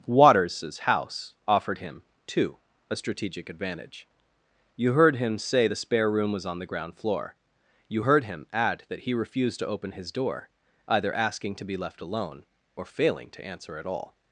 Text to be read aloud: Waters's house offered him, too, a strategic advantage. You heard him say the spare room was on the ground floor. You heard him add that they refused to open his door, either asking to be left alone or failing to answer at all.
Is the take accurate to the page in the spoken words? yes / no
no